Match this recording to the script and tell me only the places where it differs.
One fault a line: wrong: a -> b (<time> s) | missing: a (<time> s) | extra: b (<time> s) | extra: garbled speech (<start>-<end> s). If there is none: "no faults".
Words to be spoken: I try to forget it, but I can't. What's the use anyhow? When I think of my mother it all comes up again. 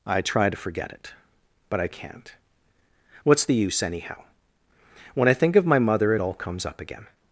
no faults